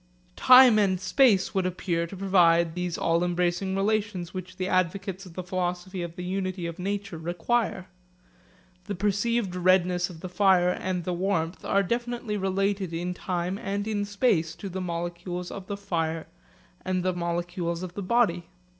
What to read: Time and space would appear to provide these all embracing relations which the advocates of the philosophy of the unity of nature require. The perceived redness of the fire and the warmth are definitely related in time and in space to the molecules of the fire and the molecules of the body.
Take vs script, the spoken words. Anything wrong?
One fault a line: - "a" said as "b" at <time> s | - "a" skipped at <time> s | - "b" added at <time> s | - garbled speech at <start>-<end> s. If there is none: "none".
none